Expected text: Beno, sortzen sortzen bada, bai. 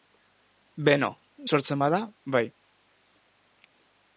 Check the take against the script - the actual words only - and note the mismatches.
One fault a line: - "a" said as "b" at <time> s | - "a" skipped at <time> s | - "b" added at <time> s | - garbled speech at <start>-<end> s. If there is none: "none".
- "sortzen" skipped at 1.8 s